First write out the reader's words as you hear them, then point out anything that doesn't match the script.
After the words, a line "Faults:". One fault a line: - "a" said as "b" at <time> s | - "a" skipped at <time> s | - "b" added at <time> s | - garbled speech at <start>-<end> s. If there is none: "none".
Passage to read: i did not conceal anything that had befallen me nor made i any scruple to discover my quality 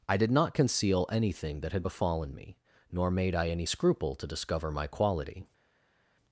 i did not conceal anything that had befallen me nor made i any scruple to discover my quality
Faults:
none